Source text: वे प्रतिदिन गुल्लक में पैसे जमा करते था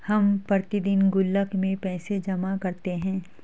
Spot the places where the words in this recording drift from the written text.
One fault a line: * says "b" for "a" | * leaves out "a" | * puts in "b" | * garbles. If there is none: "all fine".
* says "हम" for "वे"
* says "है" for "था"